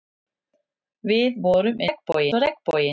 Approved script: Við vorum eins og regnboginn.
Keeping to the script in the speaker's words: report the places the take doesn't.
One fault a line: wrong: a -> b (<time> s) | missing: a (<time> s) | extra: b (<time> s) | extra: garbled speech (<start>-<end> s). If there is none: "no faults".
wrong: eins -> regnboginn (1.9 s)